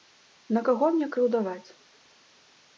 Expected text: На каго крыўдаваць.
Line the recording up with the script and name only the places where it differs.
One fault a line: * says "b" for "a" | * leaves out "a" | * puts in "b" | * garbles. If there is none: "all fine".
* puts in "мне"